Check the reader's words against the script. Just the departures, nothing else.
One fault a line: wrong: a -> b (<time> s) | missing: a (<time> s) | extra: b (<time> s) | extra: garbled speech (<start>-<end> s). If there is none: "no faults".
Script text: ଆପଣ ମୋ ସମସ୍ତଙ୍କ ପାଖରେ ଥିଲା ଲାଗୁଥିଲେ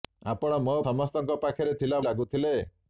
no faults